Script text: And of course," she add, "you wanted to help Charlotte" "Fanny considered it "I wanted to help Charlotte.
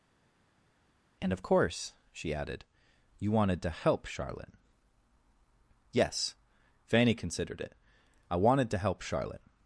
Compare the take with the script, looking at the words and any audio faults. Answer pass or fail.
fail